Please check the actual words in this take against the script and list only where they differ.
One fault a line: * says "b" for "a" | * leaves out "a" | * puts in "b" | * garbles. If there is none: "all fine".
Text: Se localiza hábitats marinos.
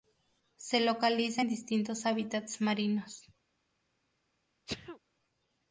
* puts in "en distintos"